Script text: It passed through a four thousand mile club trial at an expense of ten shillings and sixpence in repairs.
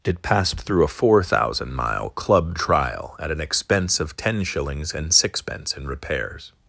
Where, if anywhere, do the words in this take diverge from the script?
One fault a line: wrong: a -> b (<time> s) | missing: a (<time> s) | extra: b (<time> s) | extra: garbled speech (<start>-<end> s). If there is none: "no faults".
no faults